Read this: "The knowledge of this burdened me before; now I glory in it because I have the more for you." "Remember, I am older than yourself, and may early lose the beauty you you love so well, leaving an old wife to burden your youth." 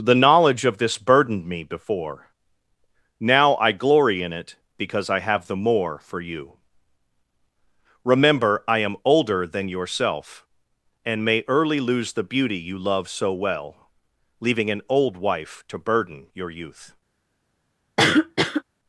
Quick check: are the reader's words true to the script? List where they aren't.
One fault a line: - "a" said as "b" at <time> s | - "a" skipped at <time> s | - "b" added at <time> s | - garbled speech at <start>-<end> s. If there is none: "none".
- "you" skipped at 12.8 s